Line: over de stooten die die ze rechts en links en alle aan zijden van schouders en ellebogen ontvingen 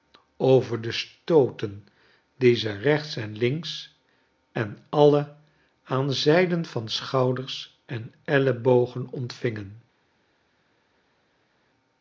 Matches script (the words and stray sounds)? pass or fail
fail